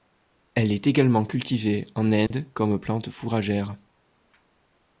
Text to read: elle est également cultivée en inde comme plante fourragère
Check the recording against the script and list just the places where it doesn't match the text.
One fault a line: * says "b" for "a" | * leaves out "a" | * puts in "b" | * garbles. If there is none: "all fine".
all fine